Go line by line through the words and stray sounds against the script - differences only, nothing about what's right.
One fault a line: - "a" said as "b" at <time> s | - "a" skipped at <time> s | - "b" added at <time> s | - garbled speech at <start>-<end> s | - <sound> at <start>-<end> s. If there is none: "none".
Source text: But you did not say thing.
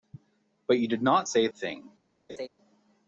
- laugh at 2.3-2.5 s